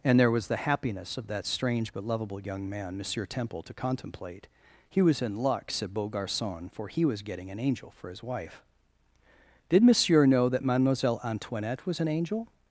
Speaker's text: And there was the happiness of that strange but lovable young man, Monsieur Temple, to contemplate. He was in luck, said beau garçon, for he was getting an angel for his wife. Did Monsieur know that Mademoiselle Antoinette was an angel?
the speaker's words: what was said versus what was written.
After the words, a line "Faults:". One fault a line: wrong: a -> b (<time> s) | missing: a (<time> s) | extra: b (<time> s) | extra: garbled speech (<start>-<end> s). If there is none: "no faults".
And there was the happiness of that strange but lovable young man, Monsieur Temple, to contemplate. He was in luck, said beau garçon, for he was getting an angel for his wife. Did Monsieur know that Mademoiselle Antoinette was an angel?
Faults:
no faults